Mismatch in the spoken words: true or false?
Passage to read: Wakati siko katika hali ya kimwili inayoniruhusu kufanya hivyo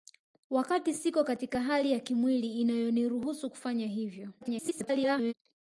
true